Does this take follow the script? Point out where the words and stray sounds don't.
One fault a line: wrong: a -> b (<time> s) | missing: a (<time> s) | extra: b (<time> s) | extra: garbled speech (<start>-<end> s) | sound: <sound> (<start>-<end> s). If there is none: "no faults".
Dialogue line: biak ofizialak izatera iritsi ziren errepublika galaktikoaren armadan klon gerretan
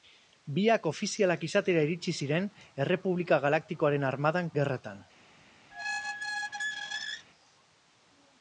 missing: klon (4.5 s)
sound: squeak (5.7-7.3 s)